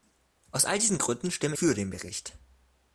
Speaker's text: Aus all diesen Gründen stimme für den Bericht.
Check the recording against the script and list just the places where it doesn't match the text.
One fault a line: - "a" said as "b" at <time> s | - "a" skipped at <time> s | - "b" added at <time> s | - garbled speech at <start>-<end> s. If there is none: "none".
none